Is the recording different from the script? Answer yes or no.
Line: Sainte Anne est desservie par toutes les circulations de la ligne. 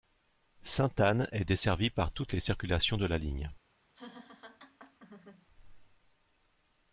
no